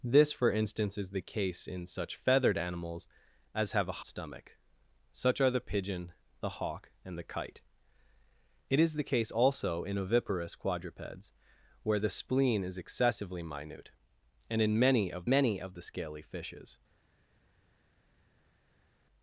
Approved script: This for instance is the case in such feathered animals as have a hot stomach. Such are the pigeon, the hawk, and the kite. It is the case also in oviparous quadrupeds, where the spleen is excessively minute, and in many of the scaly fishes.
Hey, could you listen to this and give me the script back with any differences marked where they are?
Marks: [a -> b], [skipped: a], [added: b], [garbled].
This for instance is the case in such feathered animals as have a [skipped: hot] stomach. Such are the pigeon, the hawk, and the kite. It is the case also in oviparous quadrupeds, where the spleen is excessively minute, and in many of [added: many of] the scaly fishes.